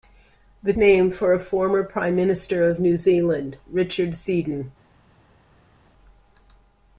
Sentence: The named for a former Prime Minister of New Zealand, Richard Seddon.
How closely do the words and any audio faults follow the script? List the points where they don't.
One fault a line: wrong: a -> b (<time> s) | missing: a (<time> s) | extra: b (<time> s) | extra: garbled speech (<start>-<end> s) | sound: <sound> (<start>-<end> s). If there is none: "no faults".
no faults